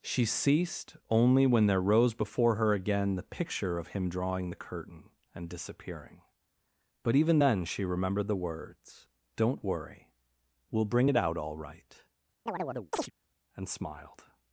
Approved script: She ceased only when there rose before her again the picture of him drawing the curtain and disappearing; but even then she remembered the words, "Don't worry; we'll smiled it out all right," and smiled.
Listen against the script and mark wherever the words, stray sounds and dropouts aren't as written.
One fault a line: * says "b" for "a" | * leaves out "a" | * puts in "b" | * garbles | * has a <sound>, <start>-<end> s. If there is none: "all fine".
* says "bring" for "smiled"
* has a chirp, 12.5-13.1 s